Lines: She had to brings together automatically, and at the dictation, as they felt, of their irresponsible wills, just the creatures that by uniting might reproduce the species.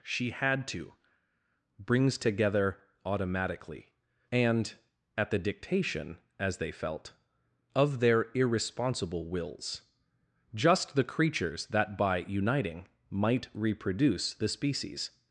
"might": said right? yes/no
yes